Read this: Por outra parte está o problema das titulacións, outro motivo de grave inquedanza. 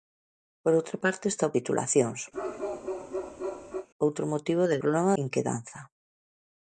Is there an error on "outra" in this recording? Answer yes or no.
no